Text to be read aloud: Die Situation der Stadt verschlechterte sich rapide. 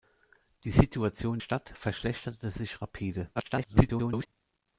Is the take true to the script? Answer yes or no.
no